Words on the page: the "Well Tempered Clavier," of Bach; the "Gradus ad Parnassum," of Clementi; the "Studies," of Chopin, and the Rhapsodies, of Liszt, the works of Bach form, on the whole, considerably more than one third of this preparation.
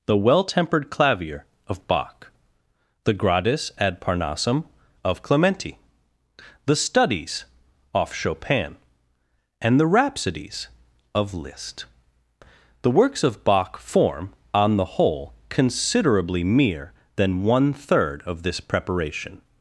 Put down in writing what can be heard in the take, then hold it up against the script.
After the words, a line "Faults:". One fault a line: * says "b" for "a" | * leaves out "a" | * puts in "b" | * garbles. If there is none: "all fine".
the "Well Tempered Clavier," of Bach; the "Gradus ad Parnassum," of Clementi; the "Studies," off Chopin, and the Rhapsodies, of Liszt, the works of Bach form, on the whole, considerably mere than one third of this preparation.
Faults:
* says "off" for "of"
* says "mere" for "more"